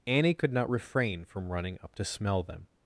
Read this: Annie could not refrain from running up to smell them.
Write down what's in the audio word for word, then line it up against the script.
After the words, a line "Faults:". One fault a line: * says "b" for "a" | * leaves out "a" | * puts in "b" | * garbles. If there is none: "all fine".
Annie could not refrain from running up to smell them.
Faults:
all fine